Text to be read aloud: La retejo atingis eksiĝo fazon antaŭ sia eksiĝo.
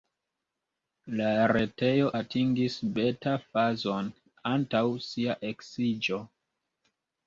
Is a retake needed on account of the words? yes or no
yes